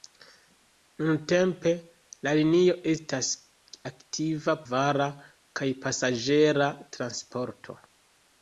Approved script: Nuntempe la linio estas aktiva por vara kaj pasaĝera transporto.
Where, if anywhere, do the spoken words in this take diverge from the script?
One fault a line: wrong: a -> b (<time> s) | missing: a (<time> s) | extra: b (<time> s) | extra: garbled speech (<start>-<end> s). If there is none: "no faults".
missing: por (4.6 s)